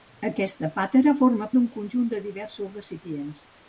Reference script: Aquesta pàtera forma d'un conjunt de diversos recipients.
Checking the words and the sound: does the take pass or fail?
pass